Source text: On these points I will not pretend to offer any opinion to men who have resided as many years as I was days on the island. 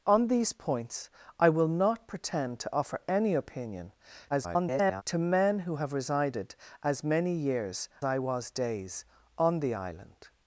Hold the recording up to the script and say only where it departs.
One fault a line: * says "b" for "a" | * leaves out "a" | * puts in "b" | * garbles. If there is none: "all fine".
* garbles
* leaves out "as"